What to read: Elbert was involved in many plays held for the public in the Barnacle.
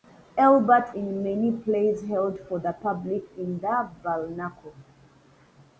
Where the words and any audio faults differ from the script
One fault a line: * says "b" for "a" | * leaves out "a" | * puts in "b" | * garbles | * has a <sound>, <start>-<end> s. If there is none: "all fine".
* leaves out "was involved"